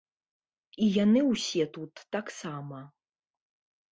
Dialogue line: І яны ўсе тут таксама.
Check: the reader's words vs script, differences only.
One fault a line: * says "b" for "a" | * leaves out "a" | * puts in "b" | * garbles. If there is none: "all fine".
all fine